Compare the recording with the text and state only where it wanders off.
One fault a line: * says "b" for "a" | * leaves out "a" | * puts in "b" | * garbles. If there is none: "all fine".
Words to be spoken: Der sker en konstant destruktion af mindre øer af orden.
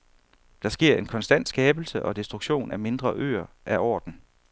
* puts in "skabelse og"